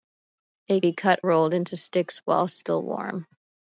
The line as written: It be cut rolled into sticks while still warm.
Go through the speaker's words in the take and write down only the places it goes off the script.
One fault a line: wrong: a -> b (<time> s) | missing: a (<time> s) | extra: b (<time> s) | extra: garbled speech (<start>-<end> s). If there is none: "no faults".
no faults